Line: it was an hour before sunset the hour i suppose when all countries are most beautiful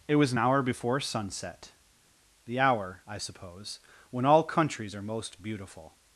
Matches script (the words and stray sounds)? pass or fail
pass